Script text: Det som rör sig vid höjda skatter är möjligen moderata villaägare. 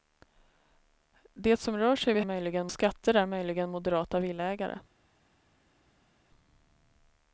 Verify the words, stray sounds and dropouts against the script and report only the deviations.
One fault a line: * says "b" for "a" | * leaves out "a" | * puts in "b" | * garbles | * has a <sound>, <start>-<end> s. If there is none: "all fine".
* says "möjligen" for "höjda"